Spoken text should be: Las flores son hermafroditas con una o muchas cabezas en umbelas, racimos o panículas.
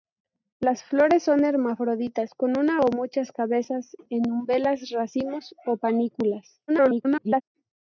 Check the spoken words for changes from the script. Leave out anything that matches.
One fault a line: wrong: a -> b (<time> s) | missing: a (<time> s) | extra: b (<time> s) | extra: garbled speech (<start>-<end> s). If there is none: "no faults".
extra: garbled speech (6.7-7.4 s)